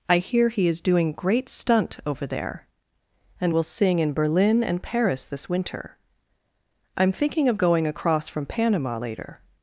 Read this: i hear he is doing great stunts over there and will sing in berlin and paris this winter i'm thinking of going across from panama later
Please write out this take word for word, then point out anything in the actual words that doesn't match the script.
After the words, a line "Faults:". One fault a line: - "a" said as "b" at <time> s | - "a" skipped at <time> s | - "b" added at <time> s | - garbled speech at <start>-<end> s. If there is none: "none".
i hear he is doing great stunt over there and will sing in berlin and paris this winter i'm thinking of going across from panama later
Faults:
- "stunts" said as "stunt" at 1.5 s